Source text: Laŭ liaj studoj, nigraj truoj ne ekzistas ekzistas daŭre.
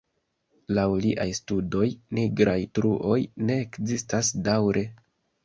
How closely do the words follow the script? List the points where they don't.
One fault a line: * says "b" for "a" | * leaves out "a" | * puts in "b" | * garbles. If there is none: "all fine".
* leaves out "ekzistas"